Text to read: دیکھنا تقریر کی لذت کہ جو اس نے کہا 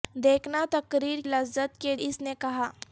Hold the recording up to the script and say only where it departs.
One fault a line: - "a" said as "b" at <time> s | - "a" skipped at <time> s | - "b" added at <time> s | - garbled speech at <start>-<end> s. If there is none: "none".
- "کی" skipped at 1.2 s
- "جو" skipped at 1.9 s